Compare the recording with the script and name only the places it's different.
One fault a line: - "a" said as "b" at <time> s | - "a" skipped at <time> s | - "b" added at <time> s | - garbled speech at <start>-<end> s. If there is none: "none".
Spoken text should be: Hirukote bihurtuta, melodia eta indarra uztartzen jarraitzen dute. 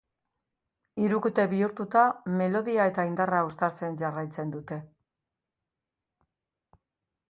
none